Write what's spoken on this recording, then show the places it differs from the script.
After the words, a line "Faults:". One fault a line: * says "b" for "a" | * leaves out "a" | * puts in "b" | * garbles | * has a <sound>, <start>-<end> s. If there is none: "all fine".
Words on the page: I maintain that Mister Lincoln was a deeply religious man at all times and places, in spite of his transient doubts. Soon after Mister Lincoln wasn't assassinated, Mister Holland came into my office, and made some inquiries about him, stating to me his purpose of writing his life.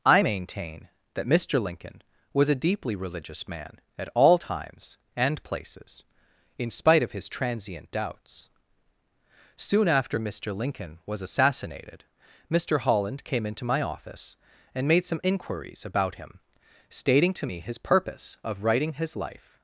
I maintain that Mister Lincoln was a deeply religious man at all times and places, in spite of his transient doubts. Soon after Mister Lincoln was assassinated, Mister Holland came into my office, and made some inquiries about him, stating to me his purpose of writing his life.
Faults:
* says "was" for "wasn't"